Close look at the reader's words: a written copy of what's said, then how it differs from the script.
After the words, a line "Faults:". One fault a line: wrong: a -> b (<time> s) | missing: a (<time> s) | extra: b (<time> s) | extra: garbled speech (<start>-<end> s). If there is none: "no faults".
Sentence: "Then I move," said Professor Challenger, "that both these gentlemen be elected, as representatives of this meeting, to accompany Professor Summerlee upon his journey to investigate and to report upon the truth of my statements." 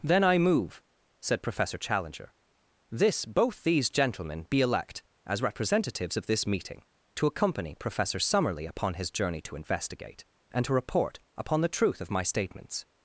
"Then I move," said Professor Challenger, "this both these gentlemen be elect, as representatives of this meeting, to accompany Professor Summerlee upon his journey to investigate and to report upon the truth of my statements."
Faults:
wrong: that -> this (2.9 s)
wrong: elected -> elect (4.6 s)